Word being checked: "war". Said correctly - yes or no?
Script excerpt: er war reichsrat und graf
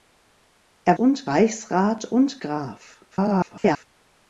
no